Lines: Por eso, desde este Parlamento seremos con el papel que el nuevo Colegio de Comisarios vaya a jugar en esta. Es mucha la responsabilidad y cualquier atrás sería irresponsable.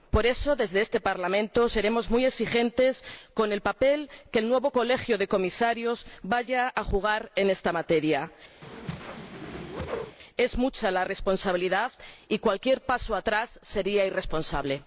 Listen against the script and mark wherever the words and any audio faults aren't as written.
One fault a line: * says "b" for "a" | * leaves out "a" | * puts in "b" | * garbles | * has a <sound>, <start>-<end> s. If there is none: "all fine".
* puts in "muy exigentes"
* puts in "materia"
* has a whoosh, 8.6-10.2 s
* puts in "paso"